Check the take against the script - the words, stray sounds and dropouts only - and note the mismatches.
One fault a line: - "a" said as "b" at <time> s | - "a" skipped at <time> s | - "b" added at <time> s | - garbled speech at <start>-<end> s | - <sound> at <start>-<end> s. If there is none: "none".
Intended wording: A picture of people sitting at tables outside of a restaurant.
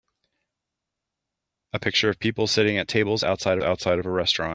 - "outside" added at 3.6 s